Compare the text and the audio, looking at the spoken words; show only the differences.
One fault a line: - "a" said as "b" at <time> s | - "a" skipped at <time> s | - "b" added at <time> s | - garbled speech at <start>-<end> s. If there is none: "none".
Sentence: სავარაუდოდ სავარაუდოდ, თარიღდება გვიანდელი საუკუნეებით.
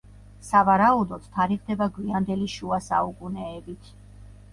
- "სავარაუდოდ" skipped at 1.3 s
- "შუა" added at 2.5 s